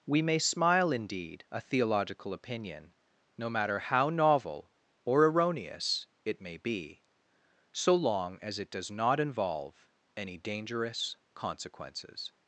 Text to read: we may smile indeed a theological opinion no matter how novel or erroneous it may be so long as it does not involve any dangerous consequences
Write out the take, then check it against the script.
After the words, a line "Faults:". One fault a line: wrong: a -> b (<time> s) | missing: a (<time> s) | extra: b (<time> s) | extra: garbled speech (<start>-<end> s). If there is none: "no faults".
we may smile indeed a theological opinion no matter how novel or erroneous it may be so long as it does not involve any dangerous consequences
Faults:
no faults